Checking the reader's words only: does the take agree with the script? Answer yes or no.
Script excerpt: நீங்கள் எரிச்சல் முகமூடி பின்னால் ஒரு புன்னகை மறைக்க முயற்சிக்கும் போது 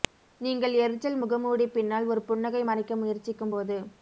yes